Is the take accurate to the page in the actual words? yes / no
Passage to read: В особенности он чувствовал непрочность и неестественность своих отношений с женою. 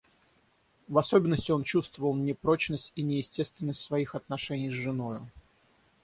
yes